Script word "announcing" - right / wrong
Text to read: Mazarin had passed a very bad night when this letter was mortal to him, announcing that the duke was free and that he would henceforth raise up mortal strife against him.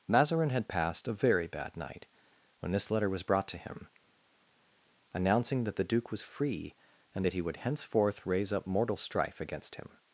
right